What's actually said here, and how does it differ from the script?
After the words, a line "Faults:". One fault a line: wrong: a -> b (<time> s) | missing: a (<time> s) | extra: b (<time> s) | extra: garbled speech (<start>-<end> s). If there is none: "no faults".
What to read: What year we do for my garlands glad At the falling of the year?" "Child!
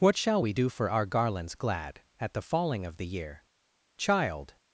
What shall we do for our garlands glad At the falling of the year?" "Child!
Faults:
wrong: year -> shall (0.2 s)
wrong: my -> our (0.9 s)